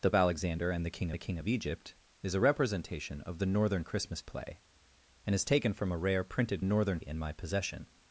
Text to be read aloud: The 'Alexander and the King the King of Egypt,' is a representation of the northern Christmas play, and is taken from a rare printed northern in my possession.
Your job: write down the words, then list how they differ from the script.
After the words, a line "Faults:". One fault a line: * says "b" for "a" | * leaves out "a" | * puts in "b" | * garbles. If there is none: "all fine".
The 'Alexander and the King the King of Egypt,' is a representation of the northern Christmas play, and is taken from a rare printed northern in my possession.
Faults:
all fine